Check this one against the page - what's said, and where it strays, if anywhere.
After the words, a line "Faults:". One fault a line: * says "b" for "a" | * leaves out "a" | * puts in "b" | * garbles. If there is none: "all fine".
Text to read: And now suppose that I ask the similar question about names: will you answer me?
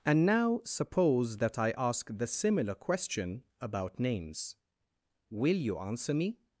And now suppose that I ask the similar question about names: will you answer me?
Faults:
all fine